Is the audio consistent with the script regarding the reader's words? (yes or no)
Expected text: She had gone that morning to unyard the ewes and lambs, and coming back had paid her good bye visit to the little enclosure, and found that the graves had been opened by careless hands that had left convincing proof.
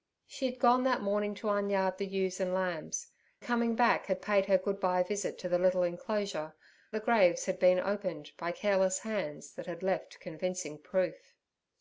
no